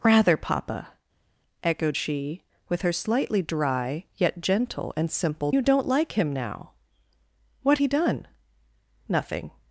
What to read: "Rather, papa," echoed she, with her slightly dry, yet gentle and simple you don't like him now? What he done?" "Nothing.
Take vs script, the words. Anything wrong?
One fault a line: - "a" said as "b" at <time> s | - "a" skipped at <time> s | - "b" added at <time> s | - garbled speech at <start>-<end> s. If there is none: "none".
none